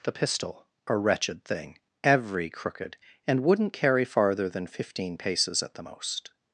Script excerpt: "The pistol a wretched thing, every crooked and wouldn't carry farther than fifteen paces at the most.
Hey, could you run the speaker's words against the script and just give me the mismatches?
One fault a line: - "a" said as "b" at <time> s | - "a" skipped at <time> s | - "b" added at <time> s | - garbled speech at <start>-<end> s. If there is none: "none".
none